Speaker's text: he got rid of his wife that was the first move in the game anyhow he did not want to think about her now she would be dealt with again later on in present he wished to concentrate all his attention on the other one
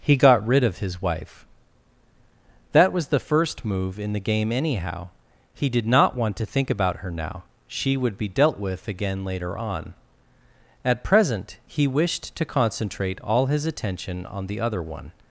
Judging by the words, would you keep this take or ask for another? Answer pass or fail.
fail